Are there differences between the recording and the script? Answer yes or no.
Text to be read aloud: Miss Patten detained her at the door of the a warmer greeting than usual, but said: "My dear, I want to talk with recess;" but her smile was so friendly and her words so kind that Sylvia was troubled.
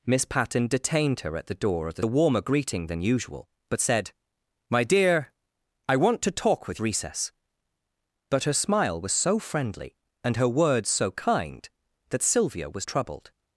no